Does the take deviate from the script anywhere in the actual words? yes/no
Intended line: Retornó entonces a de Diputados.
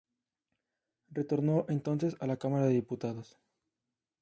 yes